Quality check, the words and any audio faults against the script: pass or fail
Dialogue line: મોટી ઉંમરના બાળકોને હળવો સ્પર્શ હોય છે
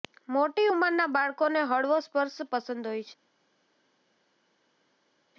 fail